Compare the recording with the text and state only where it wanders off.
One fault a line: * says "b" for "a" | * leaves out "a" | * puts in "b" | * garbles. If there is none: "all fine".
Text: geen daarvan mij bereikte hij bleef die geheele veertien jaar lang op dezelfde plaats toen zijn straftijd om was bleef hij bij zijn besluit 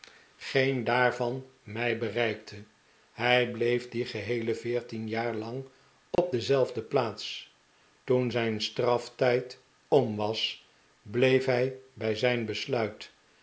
all fine